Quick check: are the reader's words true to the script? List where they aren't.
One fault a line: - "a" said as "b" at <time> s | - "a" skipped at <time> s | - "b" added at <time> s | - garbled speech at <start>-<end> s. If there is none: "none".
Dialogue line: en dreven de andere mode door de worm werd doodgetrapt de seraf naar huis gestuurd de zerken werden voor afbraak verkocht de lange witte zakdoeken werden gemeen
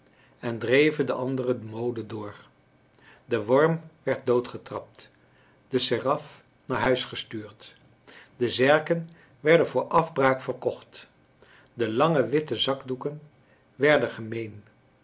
none